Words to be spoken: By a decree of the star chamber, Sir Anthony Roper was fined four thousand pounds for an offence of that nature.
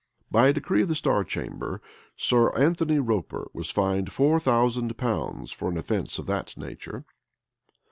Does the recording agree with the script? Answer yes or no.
yes